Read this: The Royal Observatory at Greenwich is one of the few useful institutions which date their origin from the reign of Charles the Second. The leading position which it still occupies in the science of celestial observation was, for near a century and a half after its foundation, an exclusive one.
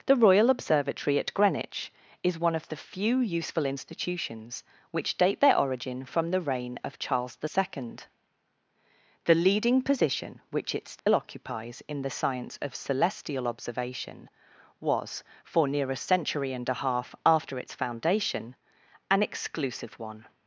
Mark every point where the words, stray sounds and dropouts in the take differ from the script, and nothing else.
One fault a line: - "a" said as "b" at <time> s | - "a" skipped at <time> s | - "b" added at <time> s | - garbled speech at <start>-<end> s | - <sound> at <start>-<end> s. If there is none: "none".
- dropout at 11.0-11.1 s